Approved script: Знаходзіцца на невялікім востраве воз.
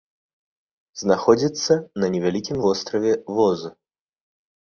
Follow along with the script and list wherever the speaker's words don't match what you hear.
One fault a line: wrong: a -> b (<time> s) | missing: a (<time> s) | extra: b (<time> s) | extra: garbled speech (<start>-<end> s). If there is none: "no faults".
no faults